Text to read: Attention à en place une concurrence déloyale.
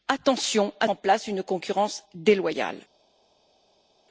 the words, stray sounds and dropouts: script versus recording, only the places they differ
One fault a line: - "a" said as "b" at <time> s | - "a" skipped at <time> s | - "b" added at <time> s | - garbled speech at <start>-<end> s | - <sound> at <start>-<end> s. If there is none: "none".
none